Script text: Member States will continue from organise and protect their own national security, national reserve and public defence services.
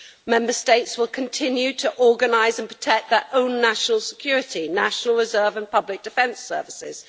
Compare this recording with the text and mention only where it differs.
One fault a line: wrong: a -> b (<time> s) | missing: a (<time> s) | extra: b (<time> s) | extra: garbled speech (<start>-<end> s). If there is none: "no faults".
wrong: from -> to (1.7 s)